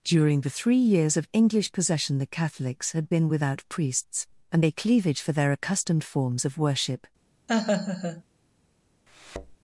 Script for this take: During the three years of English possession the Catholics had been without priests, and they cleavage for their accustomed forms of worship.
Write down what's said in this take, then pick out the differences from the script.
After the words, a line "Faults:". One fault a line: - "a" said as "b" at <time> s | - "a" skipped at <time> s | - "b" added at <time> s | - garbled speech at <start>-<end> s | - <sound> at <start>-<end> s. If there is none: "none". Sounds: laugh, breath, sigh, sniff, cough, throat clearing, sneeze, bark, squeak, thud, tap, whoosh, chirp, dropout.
During the three years of English possession the Catholics had been without priests, and they cleavage for their accustomed forms of worship.
Faults:
- laugh at 7.5-8.2 s
- thud at 9.1-9.6 s